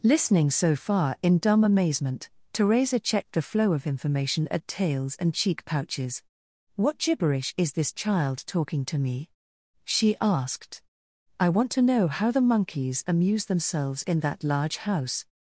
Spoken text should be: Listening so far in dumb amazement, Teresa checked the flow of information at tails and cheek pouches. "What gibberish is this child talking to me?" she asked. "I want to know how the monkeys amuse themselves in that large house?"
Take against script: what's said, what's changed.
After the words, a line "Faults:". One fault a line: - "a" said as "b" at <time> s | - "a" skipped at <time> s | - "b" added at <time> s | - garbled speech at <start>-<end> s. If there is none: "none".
Listening so far in dumb amazement, Teresa checked the flow of information at tails and cheek pouches. "What gibberish is this child talking to me?" she asked. "I want to know how the monkeys amuse themselves in that large house?"
Faults:
none